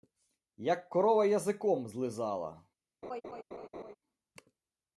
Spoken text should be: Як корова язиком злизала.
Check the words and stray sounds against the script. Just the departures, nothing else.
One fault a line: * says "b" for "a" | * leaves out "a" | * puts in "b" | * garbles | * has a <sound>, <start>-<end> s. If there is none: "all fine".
* has a laugh, 3.0-4.0 s